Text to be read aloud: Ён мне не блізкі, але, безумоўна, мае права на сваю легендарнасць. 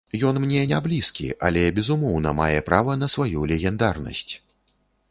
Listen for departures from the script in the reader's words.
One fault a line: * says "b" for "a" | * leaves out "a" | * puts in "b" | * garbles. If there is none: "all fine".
all fine